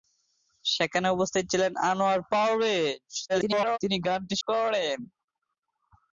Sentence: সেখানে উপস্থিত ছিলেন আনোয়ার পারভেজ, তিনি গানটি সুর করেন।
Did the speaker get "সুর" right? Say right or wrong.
wrong